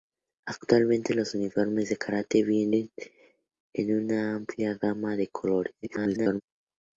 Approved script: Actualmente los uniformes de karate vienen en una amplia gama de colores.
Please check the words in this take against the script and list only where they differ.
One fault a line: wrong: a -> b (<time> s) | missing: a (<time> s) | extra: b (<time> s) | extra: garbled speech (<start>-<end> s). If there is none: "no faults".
extra: garbled speech (5.8-6.4 s)